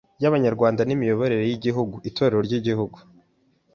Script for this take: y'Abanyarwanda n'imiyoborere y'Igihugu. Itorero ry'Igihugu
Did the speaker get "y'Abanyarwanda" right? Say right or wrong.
right